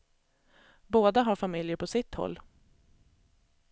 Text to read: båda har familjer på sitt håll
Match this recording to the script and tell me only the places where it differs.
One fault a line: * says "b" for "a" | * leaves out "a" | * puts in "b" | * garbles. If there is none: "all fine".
all fine